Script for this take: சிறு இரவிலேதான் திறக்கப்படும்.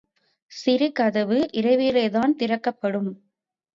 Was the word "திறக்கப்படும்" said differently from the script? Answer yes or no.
no